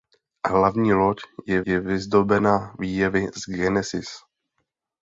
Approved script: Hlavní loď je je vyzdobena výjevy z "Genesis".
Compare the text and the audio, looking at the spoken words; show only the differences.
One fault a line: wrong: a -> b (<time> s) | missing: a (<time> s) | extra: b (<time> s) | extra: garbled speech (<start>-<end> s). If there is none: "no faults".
no faults